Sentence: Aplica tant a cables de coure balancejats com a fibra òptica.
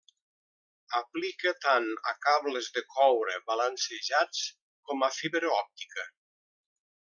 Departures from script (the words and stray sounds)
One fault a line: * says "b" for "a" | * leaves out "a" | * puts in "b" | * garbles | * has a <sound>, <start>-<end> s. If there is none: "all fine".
all fine